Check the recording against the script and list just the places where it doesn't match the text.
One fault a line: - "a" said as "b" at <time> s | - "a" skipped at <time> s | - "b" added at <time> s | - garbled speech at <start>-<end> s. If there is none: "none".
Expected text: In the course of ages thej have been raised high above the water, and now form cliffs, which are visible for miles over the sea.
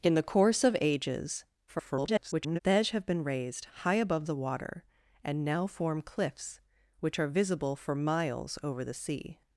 - garbled speech at 1.7-2.6 s